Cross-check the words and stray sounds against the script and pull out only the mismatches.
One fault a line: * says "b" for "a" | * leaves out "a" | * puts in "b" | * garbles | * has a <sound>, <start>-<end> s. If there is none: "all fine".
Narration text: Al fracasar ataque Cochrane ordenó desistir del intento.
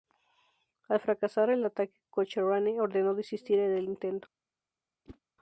* puts in "el"
* has a whoosh, 5.0-5.2 s